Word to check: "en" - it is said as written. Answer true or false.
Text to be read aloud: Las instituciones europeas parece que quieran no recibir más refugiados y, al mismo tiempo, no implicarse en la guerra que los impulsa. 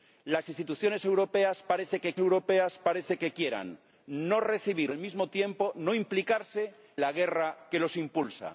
false